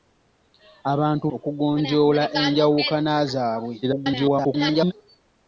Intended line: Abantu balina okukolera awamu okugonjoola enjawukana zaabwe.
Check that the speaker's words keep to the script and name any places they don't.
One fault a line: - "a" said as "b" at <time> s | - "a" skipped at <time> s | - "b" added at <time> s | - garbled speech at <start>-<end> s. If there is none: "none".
- "balina okukolera awamu" skipped at 1.2 s
- garbled speech at 3.8-4.9 s